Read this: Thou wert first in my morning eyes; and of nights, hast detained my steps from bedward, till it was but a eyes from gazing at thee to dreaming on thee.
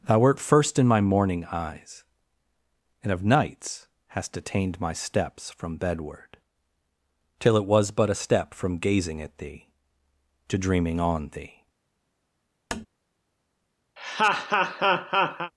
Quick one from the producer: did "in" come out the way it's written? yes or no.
yes